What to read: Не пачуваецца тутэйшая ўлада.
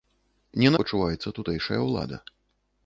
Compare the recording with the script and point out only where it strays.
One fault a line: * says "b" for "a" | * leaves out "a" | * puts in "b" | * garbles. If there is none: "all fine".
all fine